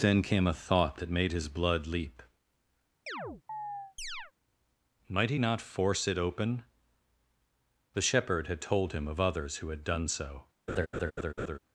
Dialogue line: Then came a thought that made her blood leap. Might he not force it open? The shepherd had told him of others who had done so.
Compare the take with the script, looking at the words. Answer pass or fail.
fail